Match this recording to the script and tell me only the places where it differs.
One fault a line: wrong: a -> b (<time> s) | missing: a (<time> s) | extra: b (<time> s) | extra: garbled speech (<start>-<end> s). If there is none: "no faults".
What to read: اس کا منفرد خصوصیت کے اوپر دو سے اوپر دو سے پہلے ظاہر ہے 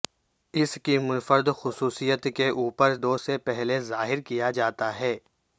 wrong: کا -> کی (0.8 s)
wrong: اوپر دو سے پہلے ظاہر -> پہلے ظاہر کیا جاتا (3.4 s)